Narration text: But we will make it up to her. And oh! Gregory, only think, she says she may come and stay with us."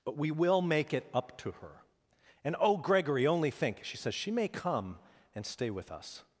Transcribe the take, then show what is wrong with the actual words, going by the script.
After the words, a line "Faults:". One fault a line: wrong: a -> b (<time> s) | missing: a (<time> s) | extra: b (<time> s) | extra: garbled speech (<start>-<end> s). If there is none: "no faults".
But we will make it up to her. And oh! Gregory, only think, she says she may come and stay with us."
Faults:
no faults